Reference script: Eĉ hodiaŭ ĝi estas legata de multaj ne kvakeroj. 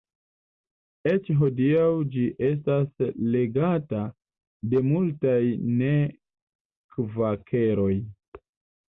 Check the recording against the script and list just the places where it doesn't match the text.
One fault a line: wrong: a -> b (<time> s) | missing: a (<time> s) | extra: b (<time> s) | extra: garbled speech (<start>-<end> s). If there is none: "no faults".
no faults